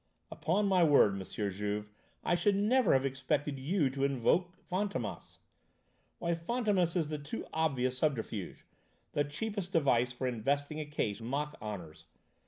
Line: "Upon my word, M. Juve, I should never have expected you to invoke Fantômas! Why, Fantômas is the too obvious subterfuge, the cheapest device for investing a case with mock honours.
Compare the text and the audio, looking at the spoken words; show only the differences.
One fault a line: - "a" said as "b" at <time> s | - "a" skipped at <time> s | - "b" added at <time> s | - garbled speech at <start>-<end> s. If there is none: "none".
- "with" skipped at 11.2 s